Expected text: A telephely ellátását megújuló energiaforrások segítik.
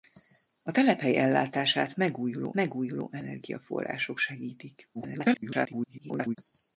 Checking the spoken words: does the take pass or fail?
fail